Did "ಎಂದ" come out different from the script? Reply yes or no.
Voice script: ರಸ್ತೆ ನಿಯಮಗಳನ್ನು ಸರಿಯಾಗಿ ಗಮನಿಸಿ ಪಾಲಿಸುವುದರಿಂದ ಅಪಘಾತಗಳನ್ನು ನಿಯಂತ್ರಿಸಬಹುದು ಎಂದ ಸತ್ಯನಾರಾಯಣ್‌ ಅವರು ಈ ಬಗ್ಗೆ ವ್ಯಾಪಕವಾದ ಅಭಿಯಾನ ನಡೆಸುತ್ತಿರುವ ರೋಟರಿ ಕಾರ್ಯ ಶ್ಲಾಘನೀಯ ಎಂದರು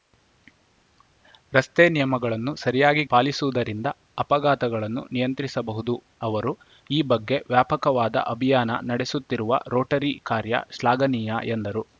yes